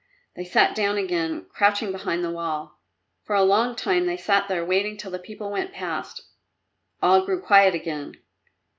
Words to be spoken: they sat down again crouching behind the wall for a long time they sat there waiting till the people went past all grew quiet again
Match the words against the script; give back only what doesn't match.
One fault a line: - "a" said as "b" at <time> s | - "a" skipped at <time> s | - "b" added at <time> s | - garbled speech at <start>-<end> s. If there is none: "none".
none